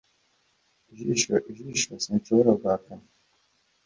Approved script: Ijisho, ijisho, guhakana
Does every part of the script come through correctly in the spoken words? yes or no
no